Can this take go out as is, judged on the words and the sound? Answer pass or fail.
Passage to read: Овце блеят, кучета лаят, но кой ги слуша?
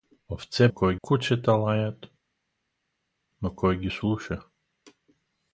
fail